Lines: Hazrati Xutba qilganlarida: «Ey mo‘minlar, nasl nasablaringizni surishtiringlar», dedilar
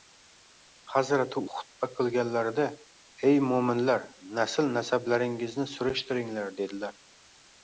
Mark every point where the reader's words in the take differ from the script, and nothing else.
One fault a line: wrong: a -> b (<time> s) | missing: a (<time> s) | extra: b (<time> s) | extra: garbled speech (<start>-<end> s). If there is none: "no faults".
no faults